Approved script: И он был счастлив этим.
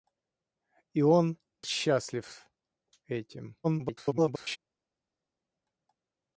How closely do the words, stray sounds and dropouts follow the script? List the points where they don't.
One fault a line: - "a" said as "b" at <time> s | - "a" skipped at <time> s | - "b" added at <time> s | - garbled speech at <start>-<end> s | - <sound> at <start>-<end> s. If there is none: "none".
- "был" skipped at 1.4 s
- garbled speech at 3.6-4.6 s